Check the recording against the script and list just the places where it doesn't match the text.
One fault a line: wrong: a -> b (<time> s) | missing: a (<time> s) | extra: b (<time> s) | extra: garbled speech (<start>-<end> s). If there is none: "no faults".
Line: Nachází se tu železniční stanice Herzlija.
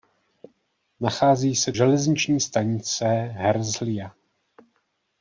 missing: tu (1.7 s)